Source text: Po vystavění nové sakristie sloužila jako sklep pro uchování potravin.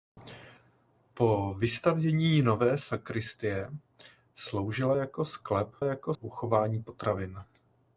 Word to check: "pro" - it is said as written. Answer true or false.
false